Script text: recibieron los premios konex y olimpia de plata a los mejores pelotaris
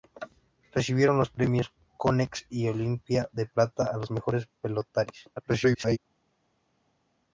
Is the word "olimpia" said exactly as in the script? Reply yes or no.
yes